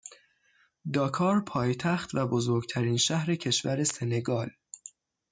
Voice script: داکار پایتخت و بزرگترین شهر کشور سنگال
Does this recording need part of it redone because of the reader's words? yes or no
no